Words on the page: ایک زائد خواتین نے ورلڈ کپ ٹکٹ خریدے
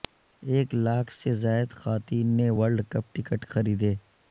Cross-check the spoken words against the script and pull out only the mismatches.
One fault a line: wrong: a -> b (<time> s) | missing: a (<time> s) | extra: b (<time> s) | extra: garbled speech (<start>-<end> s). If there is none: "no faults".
extra: لاکھ سے (0.8 s)